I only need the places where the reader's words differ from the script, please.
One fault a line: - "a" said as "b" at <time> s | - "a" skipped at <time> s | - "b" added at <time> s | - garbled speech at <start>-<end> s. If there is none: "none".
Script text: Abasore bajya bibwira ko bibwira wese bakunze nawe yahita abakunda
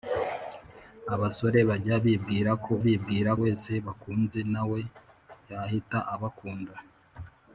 none